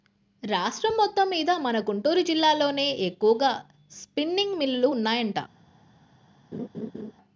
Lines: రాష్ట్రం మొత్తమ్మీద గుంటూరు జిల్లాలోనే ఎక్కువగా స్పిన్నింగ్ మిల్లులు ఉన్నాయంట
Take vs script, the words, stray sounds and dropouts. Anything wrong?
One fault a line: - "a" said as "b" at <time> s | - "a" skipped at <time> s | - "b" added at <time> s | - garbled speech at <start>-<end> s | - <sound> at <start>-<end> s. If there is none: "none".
- "మన" added at 1.6 s
- laugh at 6.5-7.1 s